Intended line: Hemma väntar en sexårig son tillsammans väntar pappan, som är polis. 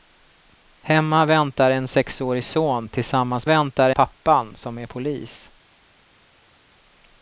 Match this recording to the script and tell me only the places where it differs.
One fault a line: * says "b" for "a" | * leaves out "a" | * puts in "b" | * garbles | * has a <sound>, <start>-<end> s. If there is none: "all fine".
all fine